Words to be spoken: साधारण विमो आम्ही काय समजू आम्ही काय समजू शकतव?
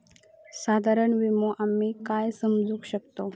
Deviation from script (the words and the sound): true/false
true